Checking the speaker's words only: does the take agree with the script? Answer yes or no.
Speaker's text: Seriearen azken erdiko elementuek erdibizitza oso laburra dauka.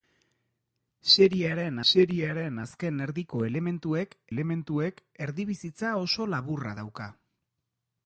no